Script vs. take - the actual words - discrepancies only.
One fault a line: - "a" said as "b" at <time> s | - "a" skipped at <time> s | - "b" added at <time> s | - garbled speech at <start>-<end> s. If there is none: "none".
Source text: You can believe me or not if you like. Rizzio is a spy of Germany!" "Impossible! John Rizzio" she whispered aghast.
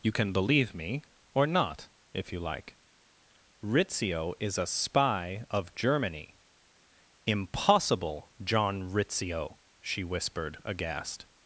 none